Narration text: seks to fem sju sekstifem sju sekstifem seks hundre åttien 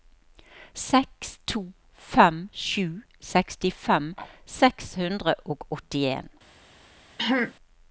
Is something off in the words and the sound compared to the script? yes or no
yes